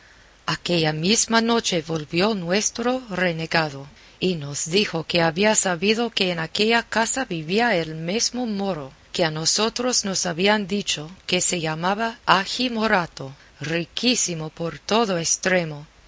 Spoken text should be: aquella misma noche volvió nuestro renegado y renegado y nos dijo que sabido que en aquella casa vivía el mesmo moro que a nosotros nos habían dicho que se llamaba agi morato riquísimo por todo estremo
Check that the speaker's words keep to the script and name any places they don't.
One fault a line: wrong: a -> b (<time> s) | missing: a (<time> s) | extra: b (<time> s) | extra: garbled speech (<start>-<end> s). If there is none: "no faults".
missing: renegado y (4.3 s)
extra: había (5.2 s)